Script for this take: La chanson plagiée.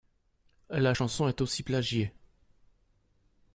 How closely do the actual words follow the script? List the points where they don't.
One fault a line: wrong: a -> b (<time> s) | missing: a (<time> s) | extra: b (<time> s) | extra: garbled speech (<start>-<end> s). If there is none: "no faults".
extra: est aussi (1.3 s)